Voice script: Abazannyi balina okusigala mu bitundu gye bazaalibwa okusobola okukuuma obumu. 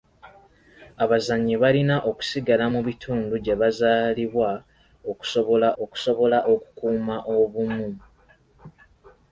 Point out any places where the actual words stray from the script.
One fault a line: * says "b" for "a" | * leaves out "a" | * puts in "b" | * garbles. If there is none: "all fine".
* puts in "okusobola"